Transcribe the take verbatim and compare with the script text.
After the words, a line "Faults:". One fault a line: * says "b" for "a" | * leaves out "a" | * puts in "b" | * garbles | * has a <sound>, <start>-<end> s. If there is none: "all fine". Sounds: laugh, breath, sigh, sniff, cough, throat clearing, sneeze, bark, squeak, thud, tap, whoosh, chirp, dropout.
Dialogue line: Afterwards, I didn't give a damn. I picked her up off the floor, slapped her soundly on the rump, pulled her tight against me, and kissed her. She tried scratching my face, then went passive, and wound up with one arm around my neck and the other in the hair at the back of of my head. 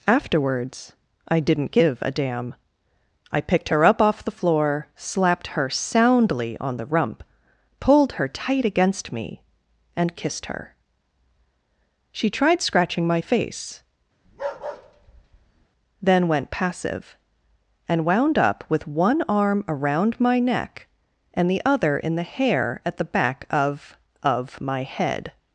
Afterwards, I didn't give a damn. I picked her up off the floor, slapped her soundly on the rump, pulled her tight against me, and kissed her. She tried scratching my face, then went passive, and wound up with one arm around my neck and the other in the hair at the back of of my head.
Faults:
* has a bark, 14.2-15.7 s